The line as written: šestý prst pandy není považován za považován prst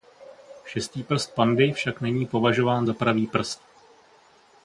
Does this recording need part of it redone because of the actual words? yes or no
yes